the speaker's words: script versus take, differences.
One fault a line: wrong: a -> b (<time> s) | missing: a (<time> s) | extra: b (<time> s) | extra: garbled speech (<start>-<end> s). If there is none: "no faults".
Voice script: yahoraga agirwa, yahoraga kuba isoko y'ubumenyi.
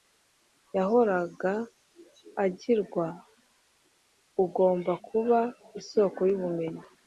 wrong: yahoraga -> ugomba (4.4 s)